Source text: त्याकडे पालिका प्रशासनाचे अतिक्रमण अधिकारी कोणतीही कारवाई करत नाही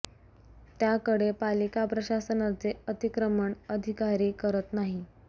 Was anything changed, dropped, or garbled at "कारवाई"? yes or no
yes